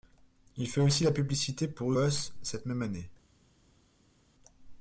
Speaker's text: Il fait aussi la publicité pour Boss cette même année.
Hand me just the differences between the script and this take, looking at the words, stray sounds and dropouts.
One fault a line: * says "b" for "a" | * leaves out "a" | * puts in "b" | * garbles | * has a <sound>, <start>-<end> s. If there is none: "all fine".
all fine